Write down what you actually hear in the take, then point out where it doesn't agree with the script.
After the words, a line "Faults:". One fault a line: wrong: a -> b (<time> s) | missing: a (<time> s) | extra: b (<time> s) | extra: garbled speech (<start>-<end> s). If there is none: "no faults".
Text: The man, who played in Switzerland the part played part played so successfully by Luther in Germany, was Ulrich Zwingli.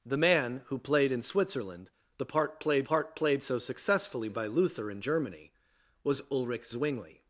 The man, who played in Switzerland the part played part played so successfully by Luther in Germany, was Ulrich Zwingli.
Faults:
no faults